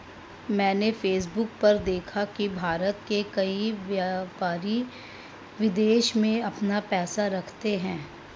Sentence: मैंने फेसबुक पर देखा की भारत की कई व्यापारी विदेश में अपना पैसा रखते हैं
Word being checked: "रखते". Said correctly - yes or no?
yes